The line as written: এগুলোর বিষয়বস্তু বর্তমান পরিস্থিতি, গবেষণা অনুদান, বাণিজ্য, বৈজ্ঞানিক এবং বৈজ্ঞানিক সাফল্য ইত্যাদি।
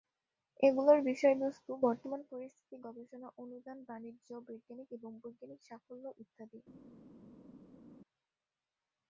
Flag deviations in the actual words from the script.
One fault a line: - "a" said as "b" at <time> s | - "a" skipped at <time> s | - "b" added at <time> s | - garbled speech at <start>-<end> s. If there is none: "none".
none